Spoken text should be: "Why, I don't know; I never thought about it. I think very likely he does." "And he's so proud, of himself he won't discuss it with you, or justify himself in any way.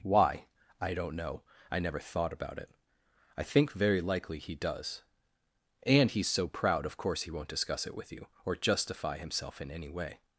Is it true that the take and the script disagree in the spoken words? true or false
true